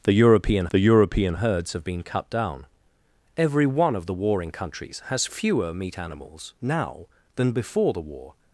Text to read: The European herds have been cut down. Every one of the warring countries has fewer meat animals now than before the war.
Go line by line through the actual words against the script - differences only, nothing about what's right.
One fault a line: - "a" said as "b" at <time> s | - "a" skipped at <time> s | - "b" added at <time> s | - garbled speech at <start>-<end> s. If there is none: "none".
- "the European" added at 0.7 s